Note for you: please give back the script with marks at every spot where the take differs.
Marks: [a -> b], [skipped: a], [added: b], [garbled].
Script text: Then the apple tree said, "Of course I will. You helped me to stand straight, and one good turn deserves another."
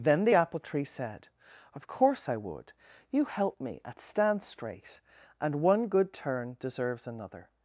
Then the apple tree said, "Of course I [will. -> would] You helped me [to -> at] stand straight, and one good turn deserves another."